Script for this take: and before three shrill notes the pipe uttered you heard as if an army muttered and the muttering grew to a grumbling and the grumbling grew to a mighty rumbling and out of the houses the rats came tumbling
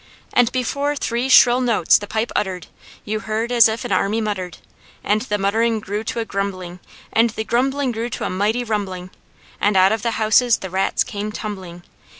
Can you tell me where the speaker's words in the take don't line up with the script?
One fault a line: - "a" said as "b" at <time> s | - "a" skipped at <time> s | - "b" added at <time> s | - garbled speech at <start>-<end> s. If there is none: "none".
none